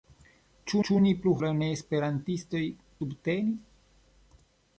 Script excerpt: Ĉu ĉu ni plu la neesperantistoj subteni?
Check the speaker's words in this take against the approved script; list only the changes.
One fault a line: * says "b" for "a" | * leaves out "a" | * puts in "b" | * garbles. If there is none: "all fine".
all fine